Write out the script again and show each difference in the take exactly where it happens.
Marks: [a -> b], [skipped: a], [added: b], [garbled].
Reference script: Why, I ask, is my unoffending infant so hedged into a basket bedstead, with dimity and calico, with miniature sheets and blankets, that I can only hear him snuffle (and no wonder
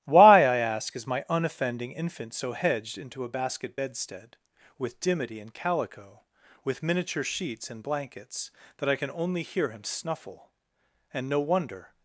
Why, I ask, is my unoffending infant so hedged into a basket bedstead, with dimity and calico, with miniature sheets and blankets, that I can only hear him snuffle (and no wonder